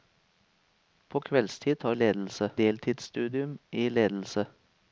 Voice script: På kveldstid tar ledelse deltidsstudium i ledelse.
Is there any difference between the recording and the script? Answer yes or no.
no